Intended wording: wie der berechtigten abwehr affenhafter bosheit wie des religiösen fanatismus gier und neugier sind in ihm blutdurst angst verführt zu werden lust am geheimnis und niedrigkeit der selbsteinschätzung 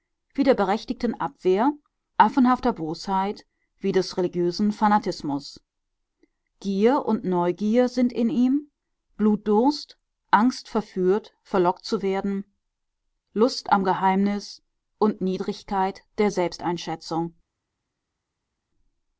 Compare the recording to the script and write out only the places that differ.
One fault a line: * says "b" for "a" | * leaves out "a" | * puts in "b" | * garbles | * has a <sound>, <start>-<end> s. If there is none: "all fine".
* puts in "verlockt"